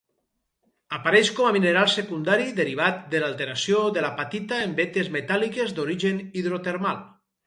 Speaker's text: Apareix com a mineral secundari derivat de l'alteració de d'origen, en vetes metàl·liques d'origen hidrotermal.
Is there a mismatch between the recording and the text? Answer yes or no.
yes